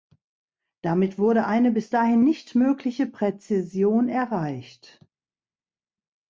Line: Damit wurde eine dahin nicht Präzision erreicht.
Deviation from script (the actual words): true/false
true